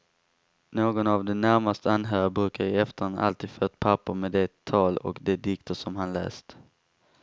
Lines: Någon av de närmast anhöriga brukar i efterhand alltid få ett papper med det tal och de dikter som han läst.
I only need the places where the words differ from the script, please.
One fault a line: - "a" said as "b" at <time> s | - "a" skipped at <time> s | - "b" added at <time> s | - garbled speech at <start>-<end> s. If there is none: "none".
none